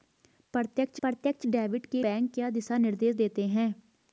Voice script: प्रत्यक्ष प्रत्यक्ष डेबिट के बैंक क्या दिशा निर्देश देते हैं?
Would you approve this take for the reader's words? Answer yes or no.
yes